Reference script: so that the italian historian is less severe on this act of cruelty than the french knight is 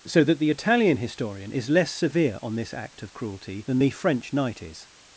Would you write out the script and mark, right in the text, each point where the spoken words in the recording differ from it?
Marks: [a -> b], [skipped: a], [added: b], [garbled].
so that the italian historian is less severe on this act of cruelty than the french knight is